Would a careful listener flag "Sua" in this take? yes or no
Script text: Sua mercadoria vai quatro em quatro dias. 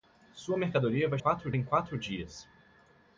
no